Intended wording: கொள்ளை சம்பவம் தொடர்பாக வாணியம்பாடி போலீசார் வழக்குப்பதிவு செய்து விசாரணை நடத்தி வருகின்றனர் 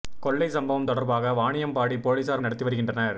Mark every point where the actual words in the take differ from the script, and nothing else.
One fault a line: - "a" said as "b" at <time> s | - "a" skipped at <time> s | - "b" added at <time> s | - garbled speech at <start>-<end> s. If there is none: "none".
- "வழக்குப்பதிவு செய்து விசாரணை" skipped at 2.4 s